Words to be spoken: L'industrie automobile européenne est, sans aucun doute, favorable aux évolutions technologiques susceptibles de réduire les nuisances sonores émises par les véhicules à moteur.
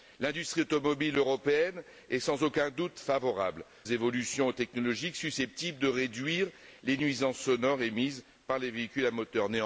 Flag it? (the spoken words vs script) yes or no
yes